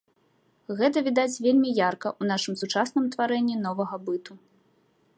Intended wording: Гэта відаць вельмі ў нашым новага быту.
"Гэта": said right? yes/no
yes